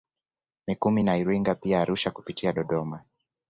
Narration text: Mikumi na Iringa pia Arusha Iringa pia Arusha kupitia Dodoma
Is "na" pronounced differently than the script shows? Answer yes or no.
no